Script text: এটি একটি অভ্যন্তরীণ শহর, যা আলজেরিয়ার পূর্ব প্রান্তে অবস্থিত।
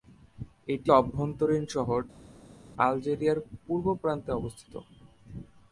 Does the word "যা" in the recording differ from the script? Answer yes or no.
yes